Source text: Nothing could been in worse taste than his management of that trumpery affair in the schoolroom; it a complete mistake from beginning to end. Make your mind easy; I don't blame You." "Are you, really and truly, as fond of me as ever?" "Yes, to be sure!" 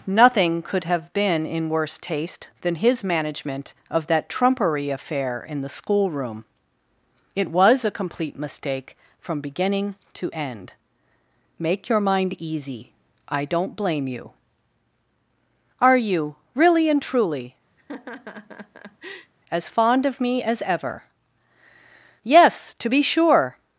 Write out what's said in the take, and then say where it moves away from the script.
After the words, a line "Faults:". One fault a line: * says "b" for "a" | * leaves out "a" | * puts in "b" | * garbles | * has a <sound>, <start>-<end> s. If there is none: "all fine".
Nothing could have been in worse taste than his management of that trumpery affair in the schoolroom; it was a complete mistake from beginning to end. Make your mind easy; I don't blame You." "Are you, really and truly, as fond of me as ever?" "Yes, to be sure!"
Faults:
* puts in "have"
* puts in "was"
* has a laugh, 17.8-19.3 s